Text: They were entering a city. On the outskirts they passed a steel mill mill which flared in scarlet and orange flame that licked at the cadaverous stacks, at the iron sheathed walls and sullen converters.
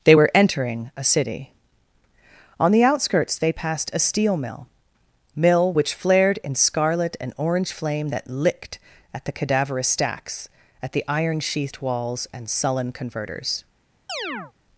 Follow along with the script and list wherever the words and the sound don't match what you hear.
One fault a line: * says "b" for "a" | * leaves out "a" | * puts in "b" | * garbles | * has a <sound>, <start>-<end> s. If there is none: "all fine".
* has a chirp, 14.1-14.5 s